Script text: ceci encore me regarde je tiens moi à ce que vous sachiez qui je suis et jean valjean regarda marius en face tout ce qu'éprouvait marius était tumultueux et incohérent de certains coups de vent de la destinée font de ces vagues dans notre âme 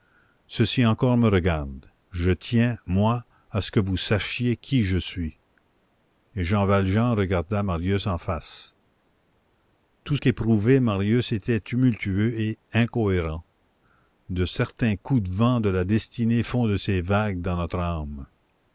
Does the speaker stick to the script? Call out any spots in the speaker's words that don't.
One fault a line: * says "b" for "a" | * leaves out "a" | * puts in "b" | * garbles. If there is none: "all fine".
* leaves out "ce"